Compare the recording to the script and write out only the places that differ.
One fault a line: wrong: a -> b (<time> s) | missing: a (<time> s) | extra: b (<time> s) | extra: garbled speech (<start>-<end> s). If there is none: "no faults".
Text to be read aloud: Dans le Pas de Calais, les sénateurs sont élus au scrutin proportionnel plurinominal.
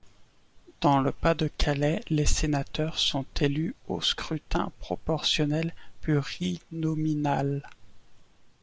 no faults